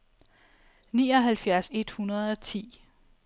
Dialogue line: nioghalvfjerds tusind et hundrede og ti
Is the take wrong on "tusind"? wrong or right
wrong